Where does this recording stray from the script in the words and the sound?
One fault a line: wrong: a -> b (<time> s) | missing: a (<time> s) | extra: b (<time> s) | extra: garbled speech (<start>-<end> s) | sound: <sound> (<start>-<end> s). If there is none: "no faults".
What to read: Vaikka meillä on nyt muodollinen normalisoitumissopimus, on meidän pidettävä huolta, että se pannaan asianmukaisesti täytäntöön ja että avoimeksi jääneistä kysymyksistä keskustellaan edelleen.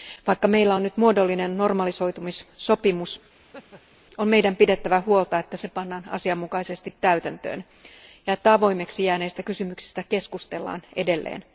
sound: laugh (3.4-4.0 s)